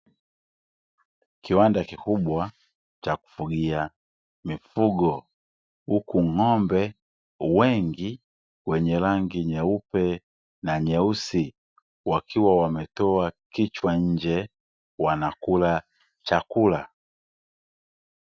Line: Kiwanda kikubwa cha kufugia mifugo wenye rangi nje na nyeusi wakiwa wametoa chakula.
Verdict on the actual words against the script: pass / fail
fail